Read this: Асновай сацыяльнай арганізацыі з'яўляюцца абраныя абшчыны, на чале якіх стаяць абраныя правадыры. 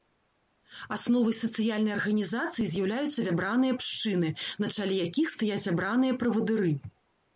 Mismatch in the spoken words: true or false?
false